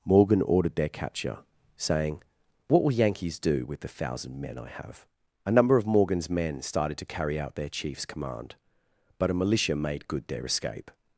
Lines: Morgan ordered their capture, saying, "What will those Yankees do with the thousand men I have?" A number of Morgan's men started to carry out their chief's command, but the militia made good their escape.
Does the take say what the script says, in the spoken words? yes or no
no